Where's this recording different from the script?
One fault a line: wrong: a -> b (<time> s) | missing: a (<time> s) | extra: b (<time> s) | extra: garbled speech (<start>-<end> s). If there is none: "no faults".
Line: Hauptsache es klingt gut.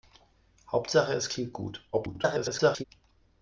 extra: garbled speech (1.9-2.8 s)